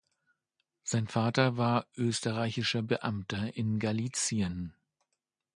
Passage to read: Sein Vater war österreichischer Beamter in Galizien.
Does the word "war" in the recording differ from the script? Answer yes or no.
no